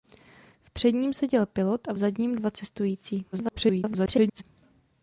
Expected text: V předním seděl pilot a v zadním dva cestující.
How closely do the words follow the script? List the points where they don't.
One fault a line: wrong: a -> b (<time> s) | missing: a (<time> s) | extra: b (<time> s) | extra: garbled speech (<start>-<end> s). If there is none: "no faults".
extra: garbled speech (3.3-4.4 s)